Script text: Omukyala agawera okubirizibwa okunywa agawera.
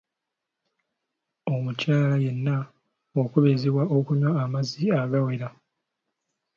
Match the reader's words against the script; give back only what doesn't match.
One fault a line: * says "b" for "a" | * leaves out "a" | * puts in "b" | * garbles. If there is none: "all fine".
* says "yenna" for "agawera"
* puts in "amazzi"